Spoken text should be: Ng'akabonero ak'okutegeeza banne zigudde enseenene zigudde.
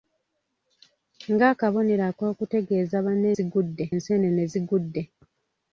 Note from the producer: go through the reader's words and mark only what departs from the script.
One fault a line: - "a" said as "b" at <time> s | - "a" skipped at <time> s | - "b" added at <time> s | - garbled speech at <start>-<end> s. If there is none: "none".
none